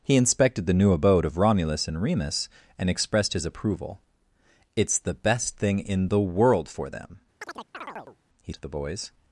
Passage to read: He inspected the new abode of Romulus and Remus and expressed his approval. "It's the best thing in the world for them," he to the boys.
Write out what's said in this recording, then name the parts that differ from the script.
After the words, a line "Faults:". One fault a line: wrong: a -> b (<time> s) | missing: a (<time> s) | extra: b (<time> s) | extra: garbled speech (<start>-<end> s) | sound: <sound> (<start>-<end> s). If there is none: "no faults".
He inspected the new abode of Romulus and Remus and expressed his approval. "It's the best thing in the world for them," he to the boys.
Faults:
sound: chirp (7.4-8.2 s)